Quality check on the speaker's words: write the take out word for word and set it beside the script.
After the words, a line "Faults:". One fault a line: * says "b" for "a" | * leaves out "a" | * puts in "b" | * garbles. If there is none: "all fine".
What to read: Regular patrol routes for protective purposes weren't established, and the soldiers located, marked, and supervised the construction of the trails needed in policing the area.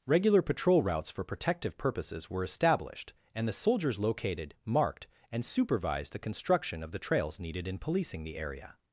Regular patrol routes for protective purposes were established, and the soldiers located, marked, and supervised the construction of the trails needed in policing the area.
Faults:
* says "were" for "weren't"